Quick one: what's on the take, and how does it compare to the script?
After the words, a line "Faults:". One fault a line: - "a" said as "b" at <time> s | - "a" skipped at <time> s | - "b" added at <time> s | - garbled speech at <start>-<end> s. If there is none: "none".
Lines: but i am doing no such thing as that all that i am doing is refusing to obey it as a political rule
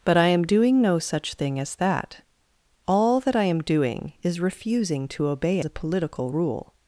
but i am doing no such thing as that all that i am doing is refusing to obey a political rule
Faults:
- "it as" skipped at 5.6 s